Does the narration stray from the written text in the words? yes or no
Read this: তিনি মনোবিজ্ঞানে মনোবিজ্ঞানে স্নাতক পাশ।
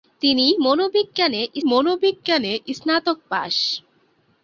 no